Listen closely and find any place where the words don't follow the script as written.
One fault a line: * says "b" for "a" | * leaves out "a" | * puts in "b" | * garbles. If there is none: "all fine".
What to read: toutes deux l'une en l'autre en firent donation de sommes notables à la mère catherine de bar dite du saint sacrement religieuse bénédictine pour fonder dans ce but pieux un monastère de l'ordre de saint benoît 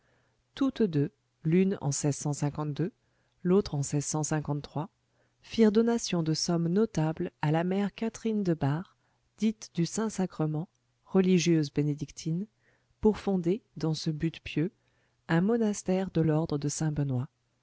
all fine